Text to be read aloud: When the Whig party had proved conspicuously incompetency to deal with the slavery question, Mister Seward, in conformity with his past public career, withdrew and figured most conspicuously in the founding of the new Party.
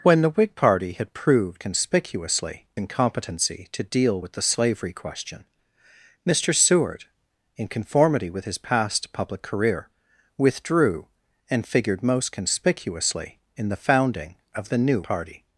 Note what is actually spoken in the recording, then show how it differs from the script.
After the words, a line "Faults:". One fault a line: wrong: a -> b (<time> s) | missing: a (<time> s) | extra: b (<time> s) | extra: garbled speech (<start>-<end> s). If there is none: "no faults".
When the Whig party had proved conspicuously incompetency to deal with the slavery question, Mister Seward, in conformity with his past public career, withdrew and figured most conspicuously in the founding of the new Party.
Faults:
no faults